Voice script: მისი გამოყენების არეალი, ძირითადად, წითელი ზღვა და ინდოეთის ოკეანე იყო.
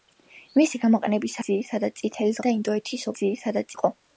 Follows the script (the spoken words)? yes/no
no